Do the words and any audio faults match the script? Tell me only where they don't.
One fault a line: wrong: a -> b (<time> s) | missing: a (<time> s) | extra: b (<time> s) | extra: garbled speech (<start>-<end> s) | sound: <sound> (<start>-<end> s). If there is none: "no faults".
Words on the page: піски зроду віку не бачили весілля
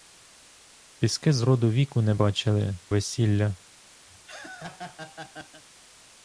sound: laugh (4.1-5.6 s)